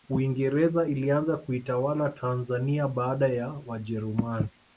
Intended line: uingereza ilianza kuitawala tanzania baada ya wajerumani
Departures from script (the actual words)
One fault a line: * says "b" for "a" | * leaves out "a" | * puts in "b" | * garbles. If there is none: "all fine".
all fine